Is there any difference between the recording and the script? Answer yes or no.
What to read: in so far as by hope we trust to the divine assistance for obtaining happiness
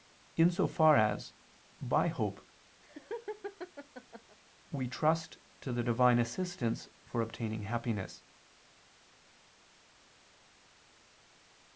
no